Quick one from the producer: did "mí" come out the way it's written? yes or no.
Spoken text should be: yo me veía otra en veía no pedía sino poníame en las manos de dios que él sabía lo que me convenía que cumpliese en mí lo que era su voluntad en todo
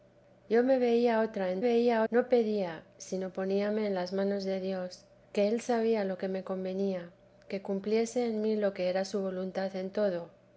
yes